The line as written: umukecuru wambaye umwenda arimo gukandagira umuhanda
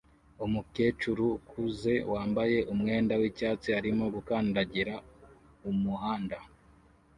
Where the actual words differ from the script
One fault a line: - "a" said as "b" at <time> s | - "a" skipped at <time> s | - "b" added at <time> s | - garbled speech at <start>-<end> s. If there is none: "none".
- "ukuze" added at 1.4 s
- "w'icyatsi" added at 3.2 s